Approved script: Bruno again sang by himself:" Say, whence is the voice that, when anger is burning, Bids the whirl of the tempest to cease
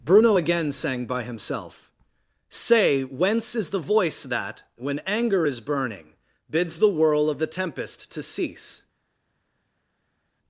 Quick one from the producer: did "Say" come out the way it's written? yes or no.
yes